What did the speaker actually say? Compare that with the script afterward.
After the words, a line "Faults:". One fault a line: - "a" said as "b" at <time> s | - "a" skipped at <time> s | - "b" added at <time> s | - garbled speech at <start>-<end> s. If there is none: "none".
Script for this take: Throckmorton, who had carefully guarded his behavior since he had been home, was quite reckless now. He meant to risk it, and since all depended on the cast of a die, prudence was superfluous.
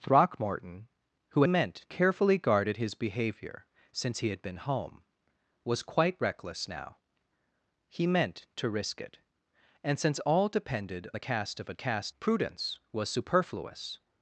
Throckmorton, who meant carefully guarded his behavior since he had been home, was quite reckless now. He meant to risk it, and since all depended the cast of a cast, prudence was superfluous.
Faults:
- "had" said as "meant" at 1.5 s
- "on" skipped at 11.1 s
- "die" said as "cast" at 11.7 s